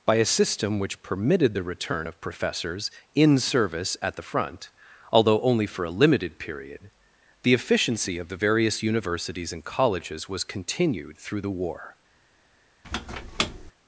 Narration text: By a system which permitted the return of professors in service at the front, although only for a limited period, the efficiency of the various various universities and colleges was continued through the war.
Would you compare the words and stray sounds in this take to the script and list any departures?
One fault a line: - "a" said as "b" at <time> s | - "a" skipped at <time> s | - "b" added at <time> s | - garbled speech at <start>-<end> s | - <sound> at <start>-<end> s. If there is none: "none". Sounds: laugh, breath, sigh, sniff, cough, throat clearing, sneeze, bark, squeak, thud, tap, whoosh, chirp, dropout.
- "various" skipped at 8.8 s
- squeak at 12.8-13.7 s